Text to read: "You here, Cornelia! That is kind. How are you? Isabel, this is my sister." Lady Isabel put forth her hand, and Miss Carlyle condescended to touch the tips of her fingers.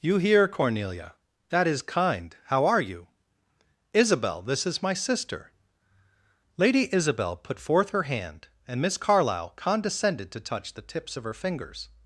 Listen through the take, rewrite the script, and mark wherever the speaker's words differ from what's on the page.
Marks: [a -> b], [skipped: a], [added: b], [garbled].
"You here, Cornelia! That is kind. How are you? Isabel, this is my sister." Lady Isabel put forth her hand, and Miss Carlyle condescended to touch the tips of her fingers.